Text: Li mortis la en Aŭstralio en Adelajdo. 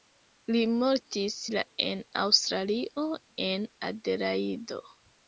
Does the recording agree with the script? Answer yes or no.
yes